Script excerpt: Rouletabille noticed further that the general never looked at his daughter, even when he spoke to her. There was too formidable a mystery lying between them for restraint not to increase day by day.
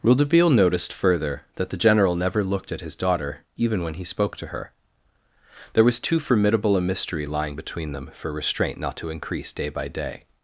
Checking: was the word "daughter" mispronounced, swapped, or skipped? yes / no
no